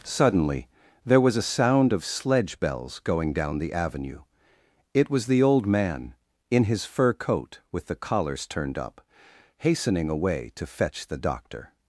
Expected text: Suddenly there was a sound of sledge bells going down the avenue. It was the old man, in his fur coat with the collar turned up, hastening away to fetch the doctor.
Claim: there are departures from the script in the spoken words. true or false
true